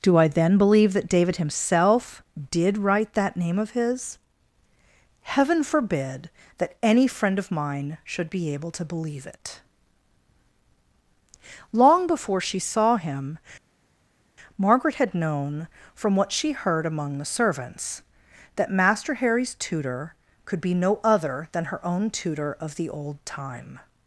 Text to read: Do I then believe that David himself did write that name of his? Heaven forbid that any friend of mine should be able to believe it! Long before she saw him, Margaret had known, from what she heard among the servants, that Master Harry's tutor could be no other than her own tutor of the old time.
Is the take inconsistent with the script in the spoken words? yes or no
no